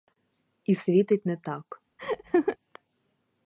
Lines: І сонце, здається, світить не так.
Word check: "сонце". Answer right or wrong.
wrong